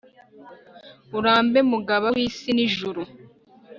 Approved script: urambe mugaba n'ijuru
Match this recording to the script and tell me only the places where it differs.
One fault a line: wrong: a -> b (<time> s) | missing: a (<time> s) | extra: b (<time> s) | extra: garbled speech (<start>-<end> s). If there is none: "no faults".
extra: w'isi (2.1 s)